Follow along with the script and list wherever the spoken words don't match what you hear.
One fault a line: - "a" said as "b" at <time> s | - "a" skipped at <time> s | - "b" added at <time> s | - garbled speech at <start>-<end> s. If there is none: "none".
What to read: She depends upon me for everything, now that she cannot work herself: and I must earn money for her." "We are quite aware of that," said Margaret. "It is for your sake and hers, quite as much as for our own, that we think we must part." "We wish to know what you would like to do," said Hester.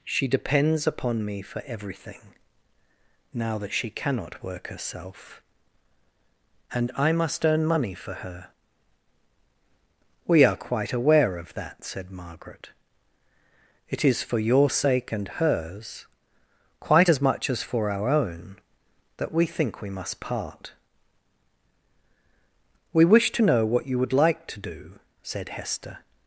none